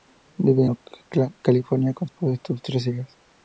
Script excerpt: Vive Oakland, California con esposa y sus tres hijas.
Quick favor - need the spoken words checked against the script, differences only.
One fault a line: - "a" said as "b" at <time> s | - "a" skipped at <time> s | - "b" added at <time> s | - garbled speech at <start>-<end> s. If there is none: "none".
none